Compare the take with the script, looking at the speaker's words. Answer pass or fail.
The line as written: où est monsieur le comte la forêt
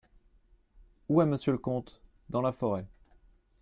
fail